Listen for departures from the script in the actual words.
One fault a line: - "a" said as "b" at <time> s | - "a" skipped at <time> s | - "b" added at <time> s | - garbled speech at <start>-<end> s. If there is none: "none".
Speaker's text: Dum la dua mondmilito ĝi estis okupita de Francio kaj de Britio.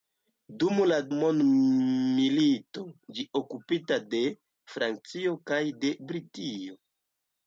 - "dua" skipped at 0.9 s
- "estis" skipped at 3.2 s